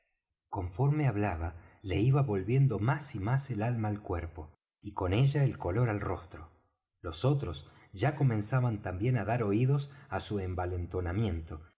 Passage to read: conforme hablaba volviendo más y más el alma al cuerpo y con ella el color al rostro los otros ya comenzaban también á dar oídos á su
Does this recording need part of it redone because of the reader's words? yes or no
yes